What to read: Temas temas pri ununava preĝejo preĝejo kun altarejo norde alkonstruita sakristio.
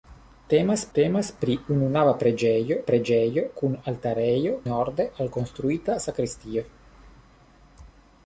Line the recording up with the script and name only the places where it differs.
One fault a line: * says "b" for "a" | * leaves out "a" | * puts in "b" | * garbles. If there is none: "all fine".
all fine